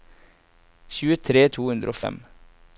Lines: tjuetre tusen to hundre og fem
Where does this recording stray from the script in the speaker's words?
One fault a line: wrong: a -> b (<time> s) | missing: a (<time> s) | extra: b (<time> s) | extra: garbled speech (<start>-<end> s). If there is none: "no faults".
missing: tusen (1.4 s)